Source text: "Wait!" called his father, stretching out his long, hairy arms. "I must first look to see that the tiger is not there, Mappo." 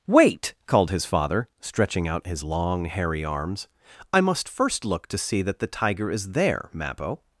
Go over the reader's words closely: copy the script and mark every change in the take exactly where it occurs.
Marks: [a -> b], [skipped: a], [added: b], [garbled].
"Wait!" called his father, stretching out his long, hairy arms. "I must first look to see that the tiger is [skipped: not] there, Mappo."